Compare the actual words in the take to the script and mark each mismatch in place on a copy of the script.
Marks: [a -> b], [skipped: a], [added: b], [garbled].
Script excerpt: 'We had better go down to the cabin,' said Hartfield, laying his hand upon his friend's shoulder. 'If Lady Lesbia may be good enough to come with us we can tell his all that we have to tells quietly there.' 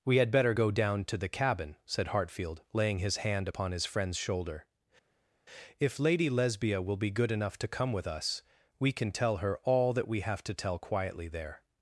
'We had better go down to the cabin,' said Hartfield, laying his hand upon his friend's shoulder. 'If Lady Lesbia [may -> will] be good enough to come with us we can tell [his -> her] all that we have to [tells -> tell] quietly there.'